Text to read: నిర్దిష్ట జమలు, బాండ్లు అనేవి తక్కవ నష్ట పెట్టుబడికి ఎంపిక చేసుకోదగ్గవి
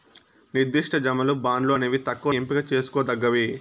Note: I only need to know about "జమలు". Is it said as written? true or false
true